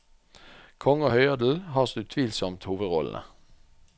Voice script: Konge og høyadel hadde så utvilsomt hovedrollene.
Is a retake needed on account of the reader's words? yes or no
yes